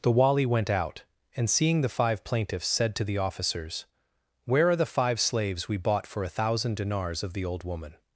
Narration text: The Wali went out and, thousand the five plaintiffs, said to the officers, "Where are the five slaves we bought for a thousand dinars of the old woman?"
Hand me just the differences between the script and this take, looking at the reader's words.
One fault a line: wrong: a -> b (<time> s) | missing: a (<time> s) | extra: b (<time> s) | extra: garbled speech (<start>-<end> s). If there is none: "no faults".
wrong: thousand -> seeing (1.5 s)